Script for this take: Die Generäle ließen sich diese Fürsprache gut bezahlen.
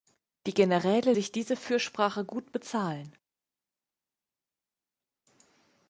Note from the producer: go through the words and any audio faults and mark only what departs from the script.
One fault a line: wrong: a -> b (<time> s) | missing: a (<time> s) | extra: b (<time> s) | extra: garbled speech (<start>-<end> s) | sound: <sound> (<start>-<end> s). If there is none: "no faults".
missing: ließen (1.1 s)